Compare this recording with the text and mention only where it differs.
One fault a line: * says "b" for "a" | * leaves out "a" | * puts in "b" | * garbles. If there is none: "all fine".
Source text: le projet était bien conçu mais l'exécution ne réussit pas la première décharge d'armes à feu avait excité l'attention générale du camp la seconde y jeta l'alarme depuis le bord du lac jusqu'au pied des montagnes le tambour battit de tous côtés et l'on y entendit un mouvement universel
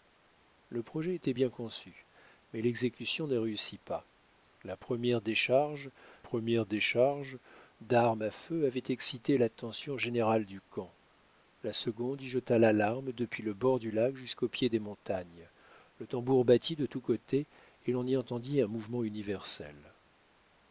* puts in "première décharge"